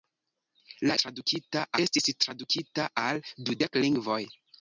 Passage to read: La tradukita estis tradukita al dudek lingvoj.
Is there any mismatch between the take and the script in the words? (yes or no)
no